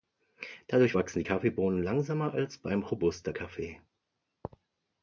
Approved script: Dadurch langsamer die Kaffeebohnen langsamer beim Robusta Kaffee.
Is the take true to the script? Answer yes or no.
no